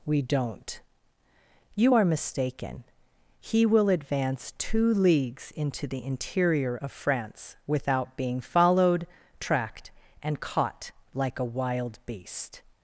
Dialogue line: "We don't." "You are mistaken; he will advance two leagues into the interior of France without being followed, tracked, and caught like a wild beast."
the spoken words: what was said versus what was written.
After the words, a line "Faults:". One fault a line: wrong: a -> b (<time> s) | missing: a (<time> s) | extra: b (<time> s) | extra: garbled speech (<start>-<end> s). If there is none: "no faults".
"We don't." "You are mistaken; he will advance two leagues into the interior of France without being followed, tracked, and caught like a wild beast."
Faults:
no faults